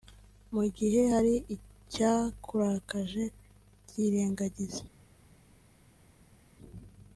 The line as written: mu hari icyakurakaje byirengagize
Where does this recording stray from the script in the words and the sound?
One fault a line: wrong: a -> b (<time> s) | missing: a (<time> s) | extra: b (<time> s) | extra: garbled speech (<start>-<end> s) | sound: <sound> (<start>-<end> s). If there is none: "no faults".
extra: gihe (0.8 s)